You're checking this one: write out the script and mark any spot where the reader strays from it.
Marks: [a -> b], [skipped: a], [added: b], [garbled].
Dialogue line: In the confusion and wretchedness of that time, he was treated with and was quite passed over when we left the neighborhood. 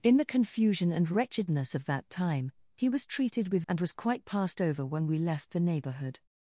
In the confusion and wretchedness of that time, he was treated with and was quite passed over when we left the neighborhood.